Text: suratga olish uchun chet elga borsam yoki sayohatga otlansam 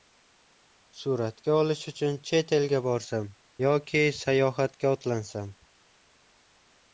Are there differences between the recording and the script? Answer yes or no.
no